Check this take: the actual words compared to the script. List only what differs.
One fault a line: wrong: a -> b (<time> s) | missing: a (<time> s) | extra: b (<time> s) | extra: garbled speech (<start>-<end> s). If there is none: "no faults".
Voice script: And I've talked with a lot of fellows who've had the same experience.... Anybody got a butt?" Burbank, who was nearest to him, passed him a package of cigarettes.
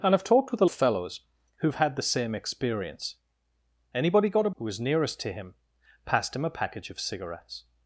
missing: lot (0.7 s)
missing: butt Burbank (4.5 s)